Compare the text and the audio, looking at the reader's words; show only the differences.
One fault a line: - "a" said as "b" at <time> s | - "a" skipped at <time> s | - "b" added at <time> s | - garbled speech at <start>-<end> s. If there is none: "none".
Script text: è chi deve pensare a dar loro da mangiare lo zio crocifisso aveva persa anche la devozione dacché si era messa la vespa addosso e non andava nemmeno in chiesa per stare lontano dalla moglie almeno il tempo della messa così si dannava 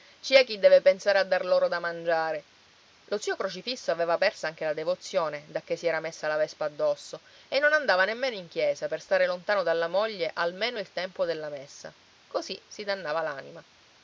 none